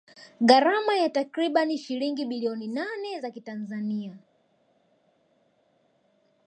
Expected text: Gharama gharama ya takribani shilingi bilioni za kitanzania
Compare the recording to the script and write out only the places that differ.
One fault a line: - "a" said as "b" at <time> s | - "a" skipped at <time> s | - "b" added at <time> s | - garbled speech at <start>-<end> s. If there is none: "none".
- "gharama" skipped at 0.9 s
- "nane" added at 2.7 s